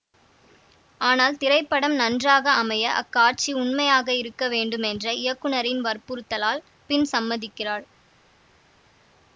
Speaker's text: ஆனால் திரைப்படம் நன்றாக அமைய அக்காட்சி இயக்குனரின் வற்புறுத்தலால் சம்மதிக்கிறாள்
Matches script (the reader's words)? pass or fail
fail